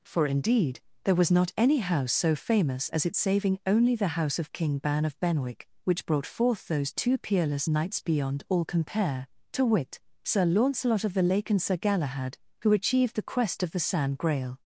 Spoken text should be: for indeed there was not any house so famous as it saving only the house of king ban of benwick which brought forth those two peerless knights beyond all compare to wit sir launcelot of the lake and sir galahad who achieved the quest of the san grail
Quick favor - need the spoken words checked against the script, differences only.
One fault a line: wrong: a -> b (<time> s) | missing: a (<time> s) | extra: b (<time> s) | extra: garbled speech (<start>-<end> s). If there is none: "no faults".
no faults